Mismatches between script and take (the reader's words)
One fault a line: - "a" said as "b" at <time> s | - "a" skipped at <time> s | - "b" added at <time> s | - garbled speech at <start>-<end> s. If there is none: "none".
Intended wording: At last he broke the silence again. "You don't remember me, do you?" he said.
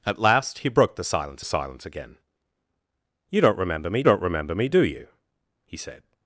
- "silence" added at 1.4 s
- "don't remember me" added at 4.0 s